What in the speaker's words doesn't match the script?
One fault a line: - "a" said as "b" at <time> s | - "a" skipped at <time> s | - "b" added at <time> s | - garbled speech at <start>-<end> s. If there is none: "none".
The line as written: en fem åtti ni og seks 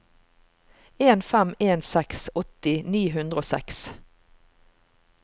- "en seks" added at 1.7 s
- "hundre" added at 3.2 s